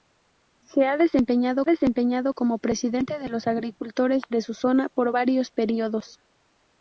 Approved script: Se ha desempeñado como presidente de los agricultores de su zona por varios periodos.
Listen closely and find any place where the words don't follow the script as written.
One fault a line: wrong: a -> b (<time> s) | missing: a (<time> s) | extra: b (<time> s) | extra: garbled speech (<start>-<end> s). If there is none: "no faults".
extra: desempeñado (1.6 s)